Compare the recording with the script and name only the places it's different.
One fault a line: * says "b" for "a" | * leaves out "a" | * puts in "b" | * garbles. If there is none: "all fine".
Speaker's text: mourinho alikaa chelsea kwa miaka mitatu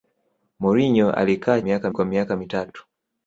* says "miaka" for "chelsea"